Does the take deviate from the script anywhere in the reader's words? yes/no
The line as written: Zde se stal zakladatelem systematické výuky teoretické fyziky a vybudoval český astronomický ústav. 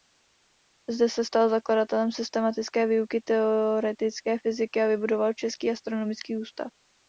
no